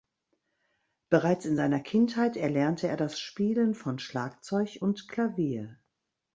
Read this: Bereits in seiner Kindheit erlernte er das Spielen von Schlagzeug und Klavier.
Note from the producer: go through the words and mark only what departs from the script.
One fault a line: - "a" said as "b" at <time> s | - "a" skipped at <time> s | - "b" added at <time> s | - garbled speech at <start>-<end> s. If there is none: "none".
none